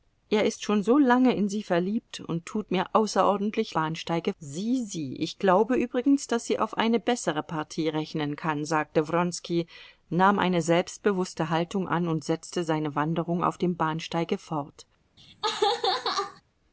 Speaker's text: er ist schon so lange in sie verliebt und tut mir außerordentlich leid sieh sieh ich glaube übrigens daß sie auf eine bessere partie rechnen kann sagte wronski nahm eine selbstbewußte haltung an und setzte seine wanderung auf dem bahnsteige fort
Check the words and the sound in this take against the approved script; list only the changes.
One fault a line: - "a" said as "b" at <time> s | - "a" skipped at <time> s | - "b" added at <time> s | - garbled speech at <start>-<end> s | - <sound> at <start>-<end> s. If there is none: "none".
- "leid" said as "bahnsteige" at 3.7 s
- laugh at 15.2-16.4 s